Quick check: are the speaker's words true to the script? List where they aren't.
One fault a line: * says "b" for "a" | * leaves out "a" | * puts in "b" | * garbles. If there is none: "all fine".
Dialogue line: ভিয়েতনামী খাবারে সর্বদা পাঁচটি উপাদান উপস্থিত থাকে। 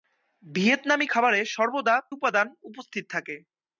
* leaves out "পাঁচটি"